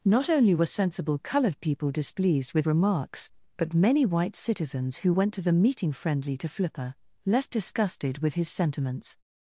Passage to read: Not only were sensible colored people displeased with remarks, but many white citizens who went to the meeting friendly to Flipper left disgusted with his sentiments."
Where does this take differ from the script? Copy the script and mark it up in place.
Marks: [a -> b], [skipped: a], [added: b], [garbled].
Not only were sensible colored people displeased with remarks, but many white citizens who went to the meeting friendly to Flipper left disgusted with his sentiments."